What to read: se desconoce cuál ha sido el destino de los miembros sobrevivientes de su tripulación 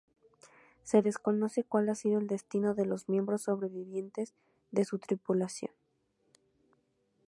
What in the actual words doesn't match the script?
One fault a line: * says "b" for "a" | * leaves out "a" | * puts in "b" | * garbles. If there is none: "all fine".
all fine